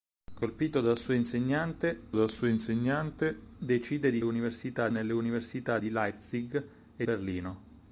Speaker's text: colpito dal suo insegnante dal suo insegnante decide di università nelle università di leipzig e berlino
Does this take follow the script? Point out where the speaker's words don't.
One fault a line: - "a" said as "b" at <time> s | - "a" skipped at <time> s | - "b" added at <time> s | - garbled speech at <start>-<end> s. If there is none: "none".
none